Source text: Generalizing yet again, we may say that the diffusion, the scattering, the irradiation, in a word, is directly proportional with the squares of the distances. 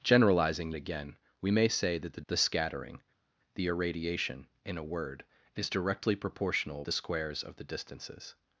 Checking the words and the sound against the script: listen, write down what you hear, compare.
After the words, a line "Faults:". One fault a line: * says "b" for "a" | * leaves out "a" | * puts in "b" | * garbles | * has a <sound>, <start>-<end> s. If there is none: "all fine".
Generalizing again, we may say that the the scattering, the irradiation, in a word, is directly proportional the squares of the distances.
Faults:
* leaves out "yet"
* leaves out "diffusion"
* leaves out "with"